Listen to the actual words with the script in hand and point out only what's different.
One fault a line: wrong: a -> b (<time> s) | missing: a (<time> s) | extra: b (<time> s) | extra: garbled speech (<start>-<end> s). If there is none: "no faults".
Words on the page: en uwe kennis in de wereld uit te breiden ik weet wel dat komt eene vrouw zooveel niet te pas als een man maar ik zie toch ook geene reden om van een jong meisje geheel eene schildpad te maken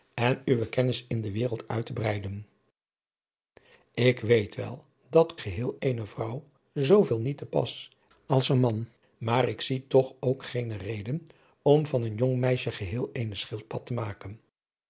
wrong: komt -> geheel (5.4 s)